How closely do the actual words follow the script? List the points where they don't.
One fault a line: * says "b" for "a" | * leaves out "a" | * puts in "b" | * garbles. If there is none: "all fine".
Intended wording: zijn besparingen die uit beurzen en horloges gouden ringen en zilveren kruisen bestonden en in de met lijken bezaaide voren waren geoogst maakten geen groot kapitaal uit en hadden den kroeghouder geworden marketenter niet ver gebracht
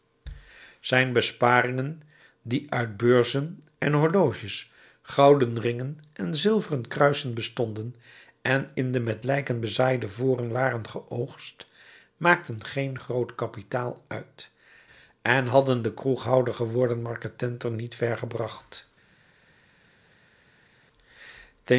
all fine